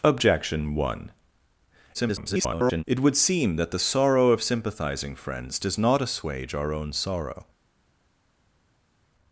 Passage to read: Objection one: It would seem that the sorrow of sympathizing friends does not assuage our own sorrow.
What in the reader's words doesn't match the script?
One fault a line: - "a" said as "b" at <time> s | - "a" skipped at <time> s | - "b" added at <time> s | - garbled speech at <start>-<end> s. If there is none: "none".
- garbled speech at 1.9-2.8 s